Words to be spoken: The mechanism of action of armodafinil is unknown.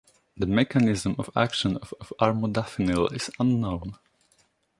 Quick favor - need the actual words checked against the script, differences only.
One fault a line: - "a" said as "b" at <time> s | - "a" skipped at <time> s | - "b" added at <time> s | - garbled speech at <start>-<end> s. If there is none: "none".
- "of" added at 2.0 s